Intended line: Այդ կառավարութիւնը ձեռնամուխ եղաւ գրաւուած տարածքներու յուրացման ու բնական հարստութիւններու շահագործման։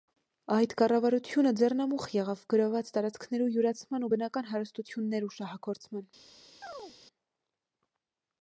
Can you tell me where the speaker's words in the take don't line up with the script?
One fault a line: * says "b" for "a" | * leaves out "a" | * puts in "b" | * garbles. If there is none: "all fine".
all fine